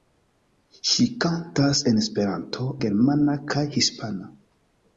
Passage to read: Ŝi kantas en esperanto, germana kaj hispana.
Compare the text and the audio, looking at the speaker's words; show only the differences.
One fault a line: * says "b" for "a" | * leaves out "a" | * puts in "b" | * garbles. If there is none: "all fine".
all fine